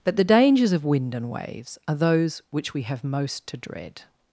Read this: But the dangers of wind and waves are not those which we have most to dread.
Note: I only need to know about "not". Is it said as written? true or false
false